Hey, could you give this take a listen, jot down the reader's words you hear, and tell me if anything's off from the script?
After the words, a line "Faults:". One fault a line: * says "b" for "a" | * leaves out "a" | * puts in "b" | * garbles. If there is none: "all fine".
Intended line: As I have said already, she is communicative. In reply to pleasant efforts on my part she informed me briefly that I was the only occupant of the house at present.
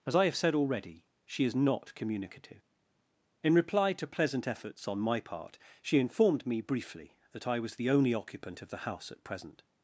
As I have said already, she is not communicative. In reply to pleasant efforts on my part she informed me briefly that I was the only occupant of the house at present.
Faults:
* puts in "not"